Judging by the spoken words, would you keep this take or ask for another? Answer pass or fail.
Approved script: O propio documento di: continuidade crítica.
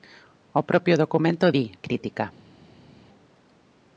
fail